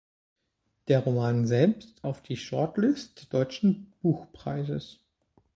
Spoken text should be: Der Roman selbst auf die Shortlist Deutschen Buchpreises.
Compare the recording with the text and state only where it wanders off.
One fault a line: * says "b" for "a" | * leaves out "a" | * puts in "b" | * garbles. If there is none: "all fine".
all fine